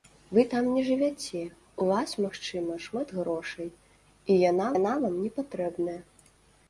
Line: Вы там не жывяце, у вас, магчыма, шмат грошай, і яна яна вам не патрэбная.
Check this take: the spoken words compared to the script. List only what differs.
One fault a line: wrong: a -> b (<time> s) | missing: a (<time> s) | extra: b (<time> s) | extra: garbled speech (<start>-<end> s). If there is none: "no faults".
no faults